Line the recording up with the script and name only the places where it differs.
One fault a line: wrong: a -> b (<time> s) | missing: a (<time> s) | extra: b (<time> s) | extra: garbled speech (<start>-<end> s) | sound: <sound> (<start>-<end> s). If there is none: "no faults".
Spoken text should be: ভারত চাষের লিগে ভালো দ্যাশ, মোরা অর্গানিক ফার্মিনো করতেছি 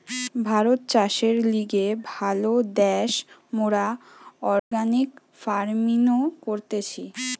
sound: dropout (4.6-4.7 s)